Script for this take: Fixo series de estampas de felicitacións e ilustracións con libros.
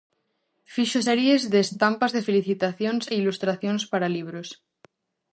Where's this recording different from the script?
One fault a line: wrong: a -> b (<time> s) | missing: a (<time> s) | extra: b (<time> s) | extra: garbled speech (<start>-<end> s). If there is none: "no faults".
wrong: con -> para (3.9 s)